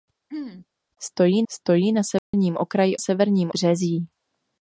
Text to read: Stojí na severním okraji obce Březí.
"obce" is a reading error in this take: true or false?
true